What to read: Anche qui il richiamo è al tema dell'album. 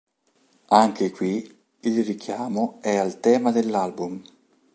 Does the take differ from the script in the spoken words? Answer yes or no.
no